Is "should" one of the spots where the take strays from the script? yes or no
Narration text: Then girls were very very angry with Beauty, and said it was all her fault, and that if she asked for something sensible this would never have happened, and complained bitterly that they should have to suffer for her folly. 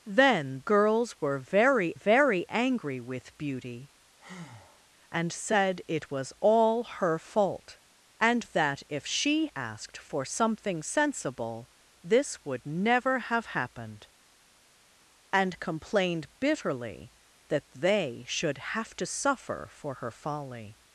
no